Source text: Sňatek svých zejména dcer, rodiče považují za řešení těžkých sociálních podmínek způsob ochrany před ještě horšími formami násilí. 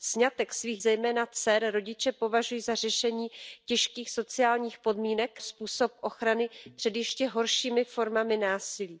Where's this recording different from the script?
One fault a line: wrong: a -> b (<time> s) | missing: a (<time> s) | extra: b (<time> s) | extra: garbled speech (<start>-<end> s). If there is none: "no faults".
no faults